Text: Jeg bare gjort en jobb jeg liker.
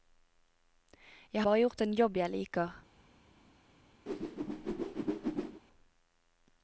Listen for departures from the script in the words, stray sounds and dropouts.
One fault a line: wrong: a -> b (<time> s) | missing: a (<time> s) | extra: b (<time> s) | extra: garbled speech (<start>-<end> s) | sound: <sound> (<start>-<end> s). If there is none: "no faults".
sound: whoosh (4.1-5.6 s)